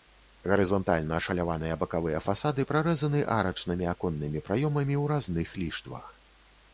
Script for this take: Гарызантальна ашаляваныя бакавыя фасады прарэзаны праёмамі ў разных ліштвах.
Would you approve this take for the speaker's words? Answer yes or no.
no